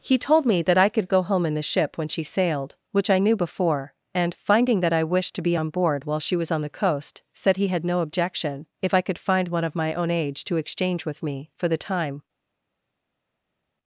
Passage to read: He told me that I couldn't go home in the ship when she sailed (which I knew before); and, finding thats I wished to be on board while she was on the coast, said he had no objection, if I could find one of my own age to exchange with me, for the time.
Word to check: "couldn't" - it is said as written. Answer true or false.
false